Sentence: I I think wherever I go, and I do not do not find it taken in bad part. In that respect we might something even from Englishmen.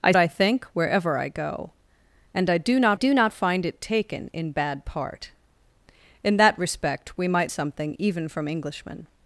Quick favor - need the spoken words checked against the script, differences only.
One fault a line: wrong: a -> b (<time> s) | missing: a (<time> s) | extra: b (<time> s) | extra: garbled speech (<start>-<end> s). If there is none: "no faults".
no faults